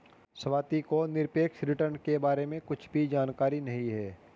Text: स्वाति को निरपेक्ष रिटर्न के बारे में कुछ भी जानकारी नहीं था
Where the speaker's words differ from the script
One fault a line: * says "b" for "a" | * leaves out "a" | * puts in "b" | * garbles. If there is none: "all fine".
* says "है" for "था"